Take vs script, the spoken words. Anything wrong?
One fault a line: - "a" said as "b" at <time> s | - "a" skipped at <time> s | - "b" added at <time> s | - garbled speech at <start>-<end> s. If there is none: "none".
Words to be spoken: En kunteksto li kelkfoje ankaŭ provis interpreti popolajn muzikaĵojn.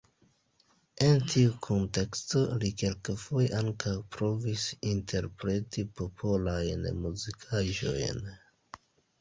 - "tiu" added at 1.3 s